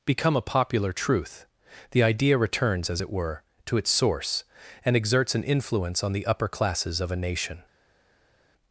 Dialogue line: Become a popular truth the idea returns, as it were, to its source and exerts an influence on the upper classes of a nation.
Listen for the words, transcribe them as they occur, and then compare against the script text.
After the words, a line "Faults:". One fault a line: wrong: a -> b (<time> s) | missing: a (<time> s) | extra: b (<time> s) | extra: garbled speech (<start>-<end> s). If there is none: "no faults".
Become a popular truth the idea returns, as it were, to its source and exerts an influence on the upper classes of a nation.
Faults:
no faults